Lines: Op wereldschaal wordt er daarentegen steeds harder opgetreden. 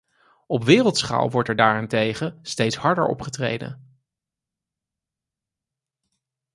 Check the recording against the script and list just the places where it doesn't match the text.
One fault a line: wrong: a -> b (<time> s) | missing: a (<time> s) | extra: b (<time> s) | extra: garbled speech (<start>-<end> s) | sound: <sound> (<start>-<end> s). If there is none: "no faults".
no faults